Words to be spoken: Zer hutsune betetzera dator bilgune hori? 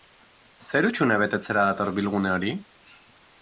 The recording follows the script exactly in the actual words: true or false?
true